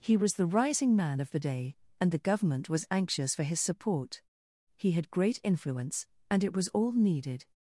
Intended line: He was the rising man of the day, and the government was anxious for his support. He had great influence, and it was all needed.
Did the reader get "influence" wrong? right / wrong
right